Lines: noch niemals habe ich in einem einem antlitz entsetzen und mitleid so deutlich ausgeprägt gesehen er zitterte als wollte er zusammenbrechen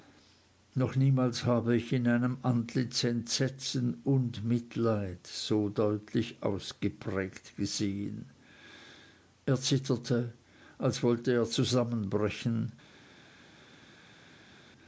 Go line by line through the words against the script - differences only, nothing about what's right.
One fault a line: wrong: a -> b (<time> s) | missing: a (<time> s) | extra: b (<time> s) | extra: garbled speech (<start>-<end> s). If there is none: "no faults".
missing: einem (2.4 s)